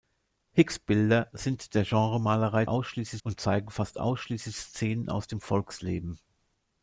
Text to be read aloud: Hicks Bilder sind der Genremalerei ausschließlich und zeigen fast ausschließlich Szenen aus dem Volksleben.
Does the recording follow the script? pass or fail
pass